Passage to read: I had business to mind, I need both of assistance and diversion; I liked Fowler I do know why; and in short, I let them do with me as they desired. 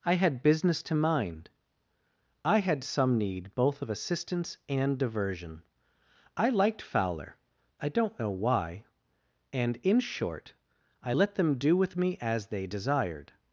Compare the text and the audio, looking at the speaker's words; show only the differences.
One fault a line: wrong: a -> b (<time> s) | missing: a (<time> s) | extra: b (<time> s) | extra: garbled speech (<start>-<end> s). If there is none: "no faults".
extra: had some (2.6 s)
wrong: do -> don't (7.9 s)